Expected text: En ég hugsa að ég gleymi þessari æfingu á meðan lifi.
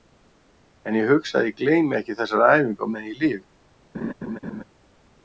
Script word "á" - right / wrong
right